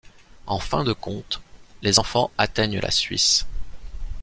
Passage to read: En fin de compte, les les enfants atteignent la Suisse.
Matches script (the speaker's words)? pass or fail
fail